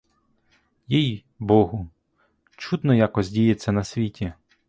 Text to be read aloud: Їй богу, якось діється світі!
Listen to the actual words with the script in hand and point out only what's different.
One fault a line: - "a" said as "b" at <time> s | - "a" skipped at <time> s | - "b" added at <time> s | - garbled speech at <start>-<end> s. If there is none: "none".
- "чудно" added at 2.6 s
- "на" added at 3.7 s